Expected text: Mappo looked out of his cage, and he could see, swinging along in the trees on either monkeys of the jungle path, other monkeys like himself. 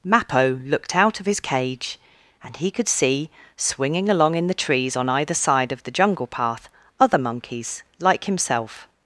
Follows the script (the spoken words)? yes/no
no